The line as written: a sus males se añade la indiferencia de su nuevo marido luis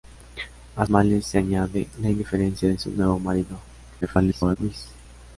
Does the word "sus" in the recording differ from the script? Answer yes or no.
yes